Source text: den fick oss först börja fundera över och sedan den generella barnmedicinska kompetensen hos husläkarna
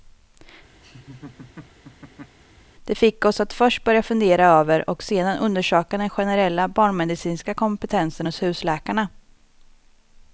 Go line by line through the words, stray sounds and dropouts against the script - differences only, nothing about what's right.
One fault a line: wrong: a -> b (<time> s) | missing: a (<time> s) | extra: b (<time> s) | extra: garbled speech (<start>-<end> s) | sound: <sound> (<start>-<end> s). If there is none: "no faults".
sound: laugh (0.8-2.4 s)
wrong: den -> det (2.8 s)
extra: att (3.4 s)
extra: undersöka (5.4 s)